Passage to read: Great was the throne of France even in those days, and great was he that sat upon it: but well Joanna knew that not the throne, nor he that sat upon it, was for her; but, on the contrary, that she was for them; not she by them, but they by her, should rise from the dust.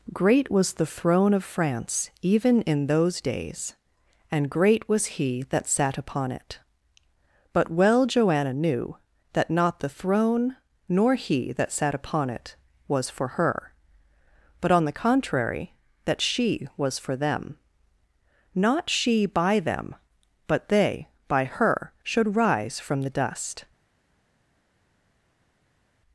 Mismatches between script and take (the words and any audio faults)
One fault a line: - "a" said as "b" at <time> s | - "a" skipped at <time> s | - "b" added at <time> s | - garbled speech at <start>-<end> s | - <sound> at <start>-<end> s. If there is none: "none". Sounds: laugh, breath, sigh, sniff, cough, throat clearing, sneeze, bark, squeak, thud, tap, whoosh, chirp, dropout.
none